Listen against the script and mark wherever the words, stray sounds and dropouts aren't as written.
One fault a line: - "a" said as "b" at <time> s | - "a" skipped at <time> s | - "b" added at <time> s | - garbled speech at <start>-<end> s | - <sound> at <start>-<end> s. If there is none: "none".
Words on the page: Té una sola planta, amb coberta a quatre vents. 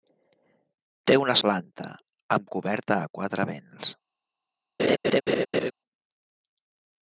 - "sola" skipped at 1.4 s
- laugh at 4.8-5.7 s